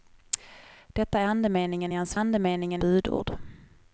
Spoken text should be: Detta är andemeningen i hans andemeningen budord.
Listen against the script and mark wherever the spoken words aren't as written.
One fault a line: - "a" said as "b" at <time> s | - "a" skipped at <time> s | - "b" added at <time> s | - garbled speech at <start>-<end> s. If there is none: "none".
none